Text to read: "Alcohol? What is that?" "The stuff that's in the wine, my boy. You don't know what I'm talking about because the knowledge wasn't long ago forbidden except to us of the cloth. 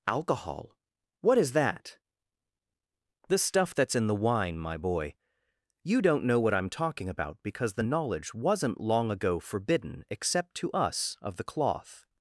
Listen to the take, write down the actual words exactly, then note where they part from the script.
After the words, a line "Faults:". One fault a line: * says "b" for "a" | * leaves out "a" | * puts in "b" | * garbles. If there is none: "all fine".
"Alcohol? What is that?" "The stuff that's in the wine, my boy. You don't know what I'm talking about because the knowledge wasn't long ago forbidden except to us of the cloth.
Faults:
all fine